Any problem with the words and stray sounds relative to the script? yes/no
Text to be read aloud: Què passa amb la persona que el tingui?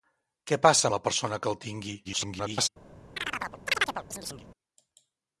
yes